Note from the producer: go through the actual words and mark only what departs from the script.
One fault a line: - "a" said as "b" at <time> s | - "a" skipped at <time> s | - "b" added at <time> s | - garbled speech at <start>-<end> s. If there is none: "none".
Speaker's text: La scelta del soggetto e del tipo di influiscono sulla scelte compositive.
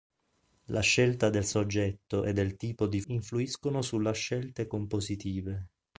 none